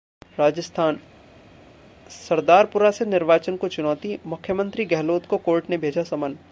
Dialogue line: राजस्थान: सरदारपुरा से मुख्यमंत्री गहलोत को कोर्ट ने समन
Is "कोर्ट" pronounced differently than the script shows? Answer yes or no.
no